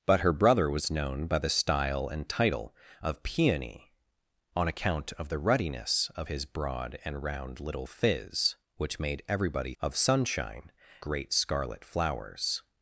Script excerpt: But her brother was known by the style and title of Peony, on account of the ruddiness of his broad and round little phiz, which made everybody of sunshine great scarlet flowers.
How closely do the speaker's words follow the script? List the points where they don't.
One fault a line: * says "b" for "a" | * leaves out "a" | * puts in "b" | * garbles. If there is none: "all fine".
all fine